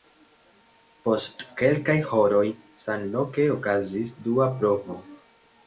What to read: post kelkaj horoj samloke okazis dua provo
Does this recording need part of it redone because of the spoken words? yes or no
no